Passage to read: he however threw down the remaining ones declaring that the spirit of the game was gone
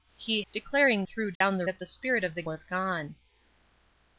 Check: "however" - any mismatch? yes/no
yes